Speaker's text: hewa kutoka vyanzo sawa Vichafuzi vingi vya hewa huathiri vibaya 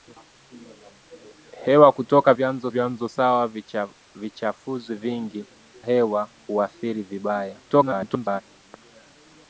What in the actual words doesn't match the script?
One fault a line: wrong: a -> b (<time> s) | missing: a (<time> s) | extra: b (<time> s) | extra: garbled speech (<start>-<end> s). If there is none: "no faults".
extra: vyanzo (2.7 s)
missing: vya (5.4 s)
extra: garbled speech (7.7-8.4 s)